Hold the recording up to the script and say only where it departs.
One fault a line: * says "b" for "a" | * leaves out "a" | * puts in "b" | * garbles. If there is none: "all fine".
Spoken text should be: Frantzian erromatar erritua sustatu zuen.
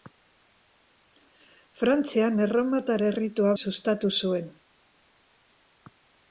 all fine